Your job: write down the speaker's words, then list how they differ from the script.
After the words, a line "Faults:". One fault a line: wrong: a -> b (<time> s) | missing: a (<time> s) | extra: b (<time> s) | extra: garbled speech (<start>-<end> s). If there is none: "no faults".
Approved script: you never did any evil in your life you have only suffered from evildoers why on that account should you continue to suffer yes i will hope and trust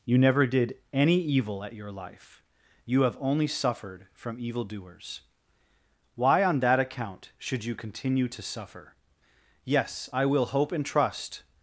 you never did any evil at your life you have only suffered from evildoers why on that account should you continue to suffer yes i will hope and trust
Faults:
wrong: in -> at (1.6 s)